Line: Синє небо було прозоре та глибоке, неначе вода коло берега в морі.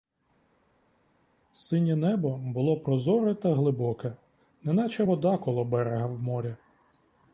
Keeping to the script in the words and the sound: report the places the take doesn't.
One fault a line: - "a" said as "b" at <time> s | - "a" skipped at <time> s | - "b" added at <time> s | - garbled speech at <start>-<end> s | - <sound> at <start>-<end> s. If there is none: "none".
none